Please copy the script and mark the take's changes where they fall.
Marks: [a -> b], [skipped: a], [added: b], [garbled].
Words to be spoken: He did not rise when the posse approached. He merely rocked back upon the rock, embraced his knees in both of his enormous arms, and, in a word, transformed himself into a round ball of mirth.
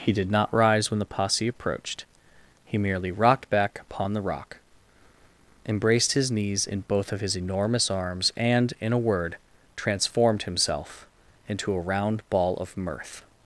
He did not rise when the posse approached. He merely rocked back upon the rock, embraced his knees in both of his enormous arms, and, in a word, transformed himself into a round ball of mirth.